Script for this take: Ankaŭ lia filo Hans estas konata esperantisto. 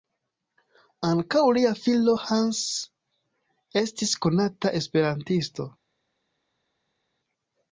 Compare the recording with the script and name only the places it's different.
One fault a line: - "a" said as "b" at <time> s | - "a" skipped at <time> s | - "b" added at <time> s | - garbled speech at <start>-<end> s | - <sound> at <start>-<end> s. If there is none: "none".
- "estas" said as "estis" at 3.8 s